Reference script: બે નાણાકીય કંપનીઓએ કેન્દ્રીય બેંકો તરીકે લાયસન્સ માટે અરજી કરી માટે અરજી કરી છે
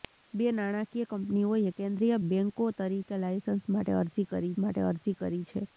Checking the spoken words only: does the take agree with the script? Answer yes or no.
yes